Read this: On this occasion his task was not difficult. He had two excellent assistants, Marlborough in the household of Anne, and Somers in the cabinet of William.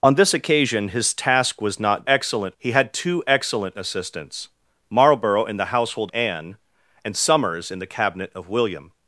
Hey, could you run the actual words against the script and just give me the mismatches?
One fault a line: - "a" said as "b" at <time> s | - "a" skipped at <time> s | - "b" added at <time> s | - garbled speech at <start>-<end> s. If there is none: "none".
- "difficult" said as "excellent" at 2.1 s
- "of" skipped at 6.1 s